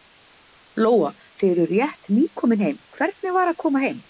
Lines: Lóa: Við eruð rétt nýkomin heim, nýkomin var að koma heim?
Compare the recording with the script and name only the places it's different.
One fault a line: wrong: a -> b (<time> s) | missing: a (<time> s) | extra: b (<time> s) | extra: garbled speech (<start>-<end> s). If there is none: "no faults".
wrong: Við -> Þið (1.4 s)
wrong: nýkomin -> hvernig (3.0 s)